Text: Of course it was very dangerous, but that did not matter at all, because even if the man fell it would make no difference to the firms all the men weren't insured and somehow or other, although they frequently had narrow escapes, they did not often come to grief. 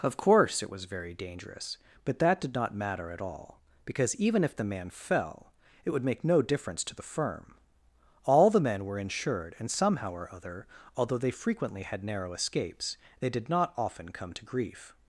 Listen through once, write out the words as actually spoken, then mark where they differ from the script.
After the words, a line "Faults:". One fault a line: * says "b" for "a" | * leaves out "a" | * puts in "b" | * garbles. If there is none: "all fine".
Of course it was very dangerous, but that did not matter at all, because even if the man fell it would make no difference to the firm all the men were insured and somehow or other, although they frequently had narrow escapes, they did not often come to grief.
Faults:
* says "firm" for "firms"
* says "were" for "weren't"